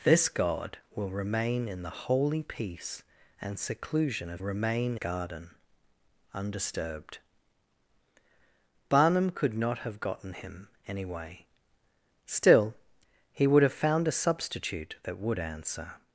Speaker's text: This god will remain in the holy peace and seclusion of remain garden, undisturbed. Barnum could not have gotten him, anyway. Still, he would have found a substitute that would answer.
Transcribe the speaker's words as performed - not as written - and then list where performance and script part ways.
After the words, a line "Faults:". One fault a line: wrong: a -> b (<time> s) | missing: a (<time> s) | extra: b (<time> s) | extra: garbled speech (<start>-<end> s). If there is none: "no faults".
This god will remain in the holy peace and seclusion of remain garden, undisturbed. Barnum could not have gotten him, anyway. Still, he would have found a substitute that would answer.
Faults:
no faults